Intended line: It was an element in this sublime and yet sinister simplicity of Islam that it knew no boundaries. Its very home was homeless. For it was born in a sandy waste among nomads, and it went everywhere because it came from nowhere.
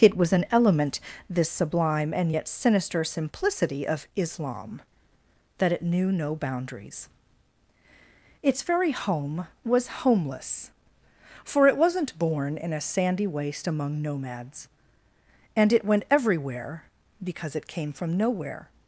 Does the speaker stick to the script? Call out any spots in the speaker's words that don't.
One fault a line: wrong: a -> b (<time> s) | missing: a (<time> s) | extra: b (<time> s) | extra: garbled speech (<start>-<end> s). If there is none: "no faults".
missing: in (1.0 s)
wrong: was -> wasn't (11.8 s)